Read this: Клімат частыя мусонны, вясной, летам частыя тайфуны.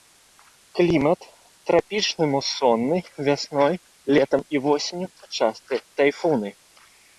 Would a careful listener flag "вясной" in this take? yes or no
no